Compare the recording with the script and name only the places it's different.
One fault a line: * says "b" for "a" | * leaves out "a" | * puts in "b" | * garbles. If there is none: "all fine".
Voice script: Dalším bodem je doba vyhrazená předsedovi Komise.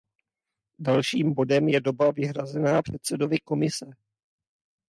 all fine